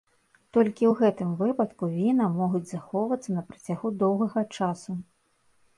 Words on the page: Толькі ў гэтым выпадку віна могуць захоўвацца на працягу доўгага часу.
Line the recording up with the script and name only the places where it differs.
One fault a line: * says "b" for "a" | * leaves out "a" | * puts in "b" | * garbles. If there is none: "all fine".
all fine